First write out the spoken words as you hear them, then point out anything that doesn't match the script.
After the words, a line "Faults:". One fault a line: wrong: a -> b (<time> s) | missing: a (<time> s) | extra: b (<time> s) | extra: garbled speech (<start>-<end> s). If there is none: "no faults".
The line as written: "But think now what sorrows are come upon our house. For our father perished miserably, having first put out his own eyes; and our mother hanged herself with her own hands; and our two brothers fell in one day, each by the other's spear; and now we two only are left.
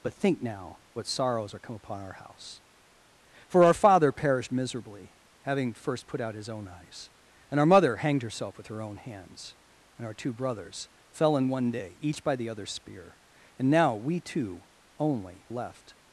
"But think now what sorrows are come upon our house. For our father perished miserably, having first put out his own eyes; and our mother hanged herself with her own hands; and our two brothers fell in one day, each by the other's spear; and now we two only left.
Faults:
missing: are (15.5 s)